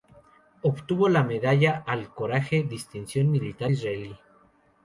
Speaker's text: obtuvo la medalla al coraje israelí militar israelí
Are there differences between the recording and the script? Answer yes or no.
yes